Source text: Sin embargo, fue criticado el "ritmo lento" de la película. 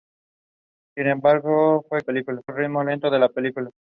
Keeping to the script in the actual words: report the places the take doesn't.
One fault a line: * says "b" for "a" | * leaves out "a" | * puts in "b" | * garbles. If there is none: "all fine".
* says "película" for "criticado"